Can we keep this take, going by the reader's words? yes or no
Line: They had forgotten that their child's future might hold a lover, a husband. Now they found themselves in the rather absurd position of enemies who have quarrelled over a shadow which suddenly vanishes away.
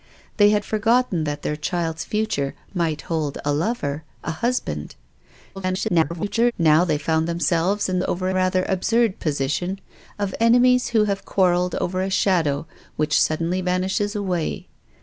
no